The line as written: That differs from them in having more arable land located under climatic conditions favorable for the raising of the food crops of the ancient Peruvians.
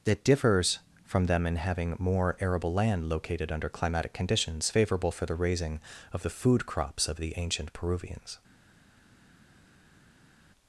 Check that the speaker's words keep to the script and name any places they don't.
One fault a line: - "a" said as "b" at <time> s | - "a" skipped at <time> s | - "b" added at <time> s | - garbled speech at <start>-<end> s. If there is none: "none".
none